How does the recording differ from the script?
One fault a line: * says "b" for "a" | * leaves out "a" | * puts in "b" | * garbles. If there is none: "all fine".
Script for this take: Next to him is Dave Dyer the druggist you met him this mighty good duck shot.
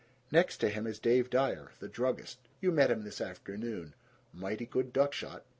* puts in "afternoon"